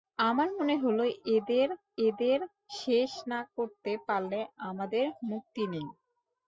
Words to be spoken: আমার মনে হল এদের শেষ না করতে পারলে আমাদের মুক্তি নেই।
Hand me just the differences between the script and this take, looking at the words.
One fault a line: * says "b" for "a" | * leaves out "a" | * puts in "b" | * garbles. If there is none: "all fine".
* puts in "এদের"